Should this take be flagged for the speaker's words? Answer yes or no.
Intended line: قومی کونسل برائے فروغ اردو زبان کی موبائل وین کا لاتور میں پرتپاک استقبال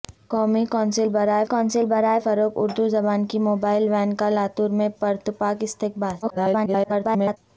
yes